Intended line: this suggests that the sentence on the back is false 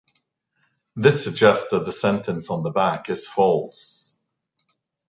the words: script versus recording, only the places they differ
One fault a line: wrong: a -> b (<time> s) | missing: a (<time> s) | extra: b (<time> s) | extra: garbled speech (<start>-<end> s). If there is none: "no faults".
no faults